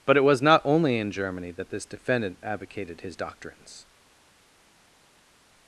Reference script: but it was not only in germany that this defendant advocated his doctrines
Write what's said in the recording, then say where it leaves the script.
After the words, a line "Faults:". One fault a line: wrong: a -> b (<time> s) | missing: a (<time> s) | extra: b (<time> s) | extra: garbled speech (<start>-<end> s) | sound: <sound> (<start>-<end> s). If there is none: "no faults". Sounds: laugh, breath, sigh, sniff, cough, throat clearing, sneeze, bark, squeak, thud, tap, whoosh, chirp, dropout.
but it was not only in germany that this defendant advocated his doctrines
Faults:
no faults